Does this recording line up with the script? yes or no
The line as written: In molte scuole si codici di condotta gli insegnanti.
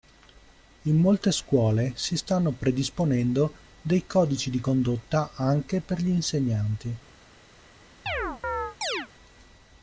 no